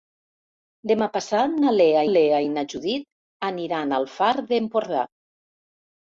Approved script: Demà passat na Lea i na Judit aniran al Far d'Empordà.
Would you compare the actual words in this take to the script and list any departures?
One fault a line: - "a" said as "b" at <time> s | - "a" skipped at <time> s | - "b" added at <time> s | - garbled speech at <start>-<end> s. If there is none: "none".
- "Lea" added at 2.1 s